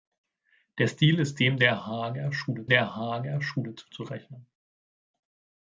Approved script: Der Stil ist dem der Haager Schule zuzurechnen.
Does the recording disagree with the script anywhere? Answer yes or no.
yes